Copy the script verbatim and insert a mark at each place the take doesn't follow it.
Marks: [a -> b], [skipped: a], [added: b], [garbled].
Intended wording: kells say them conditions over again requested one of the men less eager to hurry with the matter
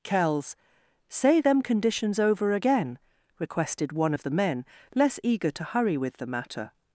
kells say them conditions over again requested one of the men less eager to hurry with the matter